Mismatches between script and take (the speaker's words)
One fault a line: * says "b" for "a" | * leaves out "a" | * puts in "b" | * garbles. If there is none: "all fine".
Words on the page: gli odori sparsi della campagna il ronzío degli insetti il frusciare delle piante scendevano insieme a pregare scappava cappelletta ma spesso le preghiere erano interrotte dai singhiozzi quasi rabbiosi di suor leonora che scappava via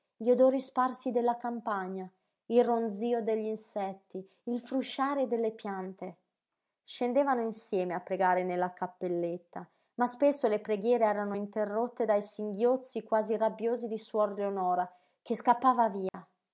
* says "nella" for "scappava"